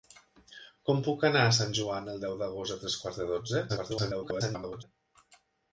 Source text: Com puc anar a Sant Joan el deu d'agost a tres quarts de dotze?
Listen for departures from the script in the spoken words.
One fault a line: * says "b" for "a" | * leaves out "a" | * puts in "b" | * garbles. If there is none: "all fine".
* garbles